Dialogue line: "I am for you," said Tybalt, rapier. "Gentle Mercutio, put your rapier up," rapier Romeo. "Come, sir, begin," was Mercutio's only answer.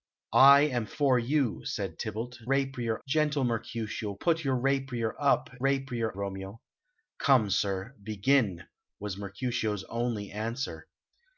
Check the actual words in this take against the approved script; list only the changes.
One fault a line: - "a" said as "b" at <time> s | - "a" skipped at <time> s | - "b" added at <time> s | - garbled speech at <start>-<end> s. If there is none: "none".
none